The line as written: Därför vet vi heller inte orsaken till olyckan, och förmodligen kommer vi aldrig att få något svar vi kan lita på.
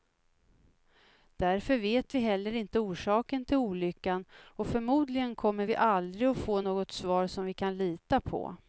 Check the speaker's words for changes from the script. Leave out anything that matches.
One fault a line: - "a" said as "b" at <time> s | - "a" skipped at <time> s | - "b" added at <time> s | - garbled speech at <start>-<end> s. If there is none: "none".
- "som" added at 7.3 s